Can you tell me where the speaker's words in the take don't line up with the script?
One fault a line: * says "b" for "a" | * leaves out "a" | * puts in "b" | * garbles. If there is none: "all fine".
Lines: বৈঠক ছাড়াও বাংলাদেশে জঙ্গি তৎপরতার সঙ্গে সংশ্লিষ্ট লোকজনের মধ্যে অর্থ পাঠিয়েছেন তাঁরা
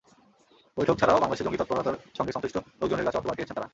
* says "কাছে" for "মধ্যে"